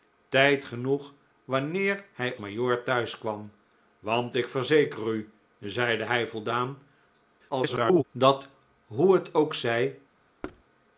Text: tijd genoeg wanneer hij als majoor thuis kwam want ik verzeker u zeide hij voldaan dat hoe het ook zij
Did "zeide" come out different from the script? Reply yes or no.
no